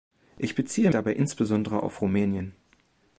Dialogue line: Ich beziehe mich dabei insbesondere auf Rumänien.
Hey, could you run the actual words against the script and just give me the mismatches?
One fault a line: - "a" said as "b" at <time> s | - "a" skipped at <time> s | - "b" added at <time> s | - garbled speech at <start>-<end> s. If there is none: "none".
- "mich" skipped at 0.9 s